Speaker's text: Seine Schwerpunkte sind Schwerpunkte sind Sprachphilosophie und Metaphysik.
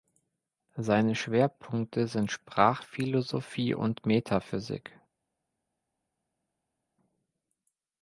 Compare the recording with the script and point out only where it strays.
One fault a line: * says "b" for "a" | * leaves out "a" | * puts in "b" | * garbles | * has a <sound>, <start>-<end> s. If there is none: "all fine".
* leaves out "Schwerpunkte sind"